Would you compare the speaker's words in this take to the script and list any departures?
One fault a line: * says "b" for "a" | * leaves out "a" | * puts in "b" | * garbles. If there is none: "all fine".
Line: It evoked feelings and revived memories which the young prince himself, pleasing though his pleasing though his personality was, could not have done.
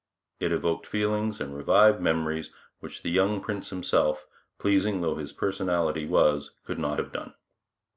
* leaves out "pleasing though his"